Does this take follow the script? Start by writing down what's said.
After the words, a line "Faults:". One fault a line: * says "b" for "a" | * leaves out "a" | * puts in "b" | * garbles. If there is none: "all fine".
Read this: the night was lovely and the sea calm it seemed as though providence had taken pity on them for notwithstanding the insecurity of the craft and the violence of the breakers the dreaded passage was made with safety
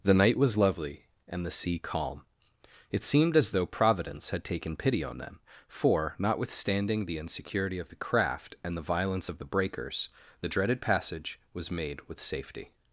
the night was lovely and the sea calm it seemed as though providence had taken pity on them for notwithstanding the insecurity of the craft and the violence of the breakers the dreaded passage was made with safety
Faults:
all fine